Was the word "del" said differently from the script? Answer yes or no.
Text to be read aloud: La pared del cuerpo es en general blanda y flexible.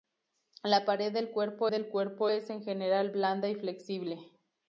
no